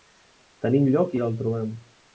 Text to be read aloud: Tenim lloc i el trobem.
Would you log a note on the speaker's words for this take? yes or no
no